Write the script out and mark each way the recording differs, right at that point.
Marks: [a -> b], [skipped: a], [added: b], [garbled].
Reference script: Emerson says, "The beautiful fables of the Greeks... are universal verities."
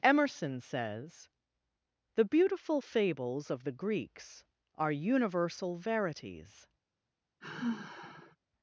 Emerson says, "The beautiful fables of the Greeks... are universal verities."